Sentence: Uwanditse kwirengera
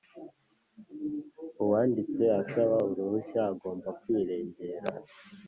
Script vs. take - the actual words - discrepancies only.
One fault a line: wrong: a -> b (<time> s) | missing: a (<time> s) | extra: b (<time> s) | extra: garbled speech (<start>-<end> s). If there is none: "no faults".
extra: asaba uruhushya agomba (2.4 s)